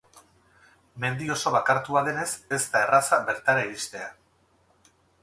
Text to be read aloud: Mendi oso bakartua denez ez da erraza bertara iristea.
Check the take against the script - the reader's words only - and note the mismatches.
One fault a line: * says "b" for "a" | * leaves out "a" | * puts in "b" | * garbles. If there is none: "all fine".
all fine